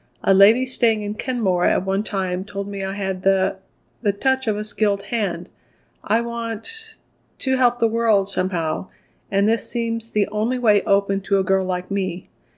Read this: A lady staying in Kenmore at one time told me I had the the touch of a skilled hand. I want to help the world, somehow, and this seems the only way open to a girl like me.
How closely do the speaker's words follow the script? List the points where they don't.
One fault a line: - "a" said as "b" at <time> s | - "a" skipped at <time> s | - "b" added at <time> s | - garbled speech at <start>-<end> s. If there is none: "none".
none